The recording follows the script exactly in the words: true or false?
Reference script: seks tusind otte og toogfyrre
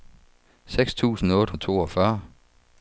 true